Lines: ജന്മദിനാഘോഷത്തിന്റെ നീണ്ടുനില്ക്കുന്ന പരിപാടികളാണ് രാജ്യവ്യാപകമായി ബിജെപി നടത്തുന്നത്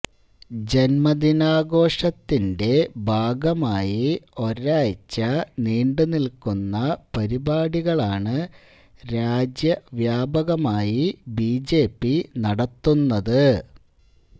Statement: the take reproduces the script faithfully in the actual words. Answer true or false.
false